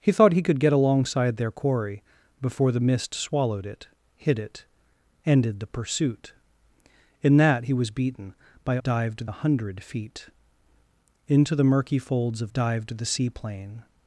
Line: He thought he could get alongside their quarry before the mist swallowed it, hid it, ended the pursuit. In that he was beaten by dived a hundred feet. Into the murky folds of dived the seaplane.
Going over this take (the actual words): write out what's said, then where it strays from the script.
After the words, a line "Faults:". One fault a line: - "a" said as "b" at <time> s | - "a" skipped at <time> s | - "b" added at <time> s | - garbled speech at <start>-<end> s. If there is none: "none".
He thought he could get alongside their quarry before the mist swallowed it, hid it, ended the pursuit. In that he was beaten by dived a hundred feet. Into the murky folds of dived the seaplane.
Faults:
none